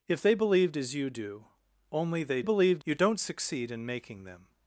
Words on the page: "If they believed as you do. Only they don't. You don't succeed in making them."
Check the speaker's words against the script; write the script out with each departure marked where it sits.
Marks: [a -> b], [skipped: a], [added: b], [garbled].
"If they believed as you do. Only they [don't. -> believed] You don't succeed in making them."